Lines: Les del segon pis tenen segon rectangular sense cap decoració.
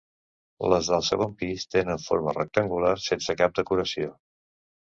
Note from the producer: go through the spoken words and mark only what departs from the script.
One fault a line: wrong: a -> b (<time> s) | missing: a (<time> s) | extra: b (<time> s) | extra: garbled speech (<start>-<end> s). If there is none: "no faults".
wrong: segon -> forma (2.0 s)